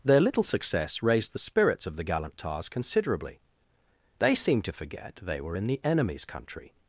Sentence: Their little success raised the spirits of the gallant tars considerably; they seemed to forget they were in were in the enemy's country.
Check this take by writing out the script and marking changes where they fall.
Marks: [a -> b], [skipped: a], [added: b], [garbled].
Their little success raised the spirits of the gallant tars considerably; they seemed to forget they were in [skipped: were in] the enemy's country.